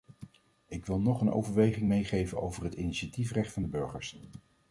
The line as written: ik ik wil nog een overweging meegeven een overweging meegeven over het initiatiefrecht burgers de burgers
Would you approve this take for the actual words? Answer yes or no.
no